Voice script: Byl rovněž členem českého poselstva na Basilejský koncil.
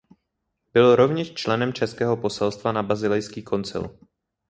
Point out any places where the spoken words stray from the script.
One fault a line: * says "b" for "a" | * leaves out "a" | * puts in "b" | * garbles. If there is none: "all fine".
all fine